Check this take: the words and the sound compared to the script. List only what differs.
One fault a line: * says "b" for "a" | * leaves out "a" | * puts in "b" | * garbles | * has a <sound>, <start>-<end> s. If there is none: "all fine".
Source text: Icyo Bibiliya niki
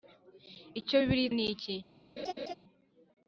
* has a laugh, 2.2-2.5 s